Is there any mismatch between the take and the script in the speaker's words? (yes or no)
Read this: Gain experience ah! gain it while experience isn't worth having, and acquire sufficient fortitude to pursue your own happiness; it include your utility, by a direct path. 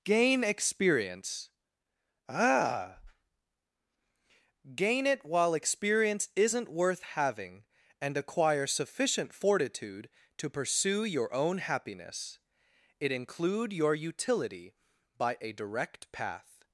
no